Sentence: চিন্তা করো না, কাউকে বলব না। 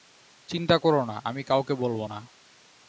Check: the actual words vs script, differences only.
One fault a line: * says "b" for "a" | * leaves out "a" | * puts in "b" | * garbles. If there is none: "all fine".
* puts in "আমি"